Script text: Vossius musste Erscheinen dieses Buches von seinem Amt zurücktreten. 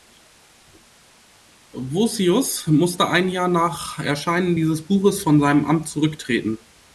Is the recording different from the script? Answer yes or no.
yes